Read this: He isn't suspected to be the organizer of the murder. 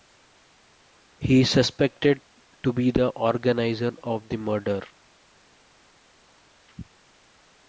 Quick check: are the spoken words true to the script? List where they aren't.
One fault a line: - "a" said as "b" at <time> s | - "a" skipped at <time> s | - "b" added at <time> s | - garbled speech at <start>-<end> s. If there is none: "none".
- "isn't" said as "is" at 1.4 s